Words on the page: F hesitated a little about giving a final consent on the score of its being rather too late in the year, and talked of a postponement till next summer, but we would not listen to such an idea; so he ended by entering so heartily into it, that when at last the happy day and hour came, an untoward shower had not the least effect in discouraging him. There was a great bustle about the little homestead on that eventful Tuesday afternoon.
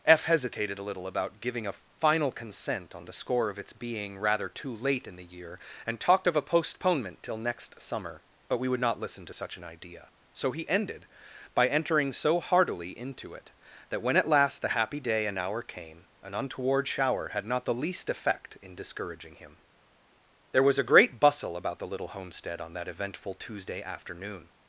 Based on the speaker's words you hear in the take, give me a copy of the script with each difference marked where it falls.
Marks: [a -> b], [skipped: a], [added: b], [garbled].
F hesitated a little about giving a final consent on the score of its being rather too late in the year, and talked of a postponement till next summer, but we would not listen to such an idea; so he ended by entering so heartily into it, that when at last the happy day and hour came, an untoward shower had not the least effect in discouraging him. There was a great bustle about the little homestead on that eventful Tuesday afternoon.